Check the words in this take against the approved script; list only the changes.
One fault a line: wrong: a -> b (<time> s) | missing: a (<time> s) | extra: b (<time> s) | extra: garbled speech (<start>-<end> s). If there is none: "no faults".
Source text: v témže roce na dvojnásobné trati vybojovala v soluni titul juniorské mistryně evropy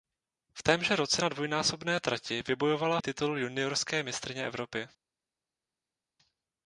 missing: v soluni (3.0 s)